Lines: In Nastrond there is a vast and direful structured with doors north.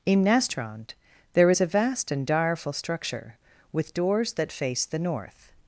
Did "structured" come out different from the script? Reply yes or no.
yes